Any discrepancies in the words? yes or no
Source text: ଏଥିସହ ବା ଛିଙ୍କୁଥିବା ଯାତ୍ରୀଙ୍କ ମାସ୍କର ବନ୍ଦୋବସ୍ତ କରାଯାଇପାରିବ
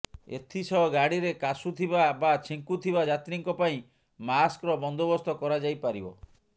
yes